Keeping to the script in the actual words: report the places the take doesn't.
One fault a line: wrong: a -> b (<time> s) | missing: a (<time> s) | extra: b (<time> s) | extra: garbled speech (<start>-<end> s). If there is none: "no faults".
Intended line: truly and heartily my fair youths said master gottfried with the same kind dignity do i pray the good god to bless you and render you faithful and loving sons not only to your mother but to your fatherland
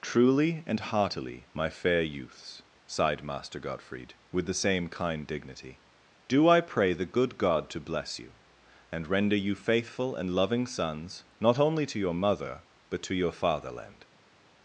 wrong: said -> sighed (2.9 s)